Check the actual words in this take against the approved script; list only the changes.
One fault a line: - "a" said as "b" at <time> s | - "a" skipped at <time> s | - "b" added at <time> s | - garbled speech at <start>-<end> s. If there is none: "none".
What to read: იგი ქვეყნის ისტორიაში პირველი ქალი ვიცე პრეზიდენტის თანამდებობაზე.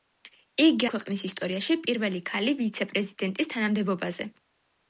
none